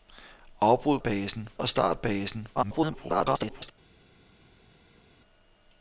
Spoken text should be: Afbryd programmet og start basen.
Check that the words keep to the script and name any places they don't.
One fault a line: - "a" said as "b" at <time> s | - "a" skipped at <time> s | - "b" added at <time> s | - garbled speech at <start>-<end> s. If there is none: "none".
- "programmet" said as "basen" at 1.0 s
- garbled speech at 2.5-3.7 s